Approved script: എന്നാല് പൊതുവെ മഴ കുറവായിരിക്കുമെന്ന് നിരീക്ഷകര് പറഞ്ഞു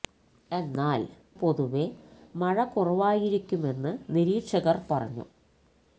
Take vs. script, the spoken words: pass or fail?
pass